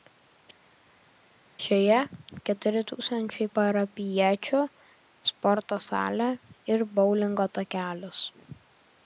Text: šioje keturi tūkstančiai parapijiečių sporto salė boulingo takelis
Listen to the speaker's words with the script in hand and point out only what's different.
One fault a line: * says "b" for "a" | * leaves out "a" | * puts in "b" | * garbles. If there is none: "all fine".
* puts in "ir"